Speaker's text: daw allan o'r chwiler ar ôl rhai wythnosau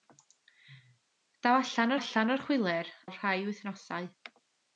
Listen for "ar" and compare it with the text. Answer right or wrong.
wrong